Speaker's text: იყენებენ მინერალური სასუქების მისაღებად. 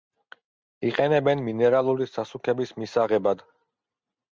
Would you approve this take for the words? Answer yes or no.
yes